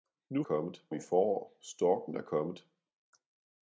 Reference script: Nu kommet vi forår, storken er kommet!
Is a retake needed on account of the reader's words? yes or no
no